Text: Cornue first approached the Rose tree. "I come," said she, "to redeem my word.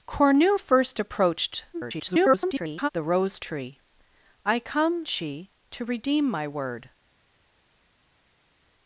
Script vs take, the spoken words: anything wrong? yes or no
yes